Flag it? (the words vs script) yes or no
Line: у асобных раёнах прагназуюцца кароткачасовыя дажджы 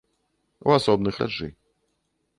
yes